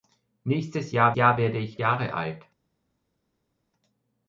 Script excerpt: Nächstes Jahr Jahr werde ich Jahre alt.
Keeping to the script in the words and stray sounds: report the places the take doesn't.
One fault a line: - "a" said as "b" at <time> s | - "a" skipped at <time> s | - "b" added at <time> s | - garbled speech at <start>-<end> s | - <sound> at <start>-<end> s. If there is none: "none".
none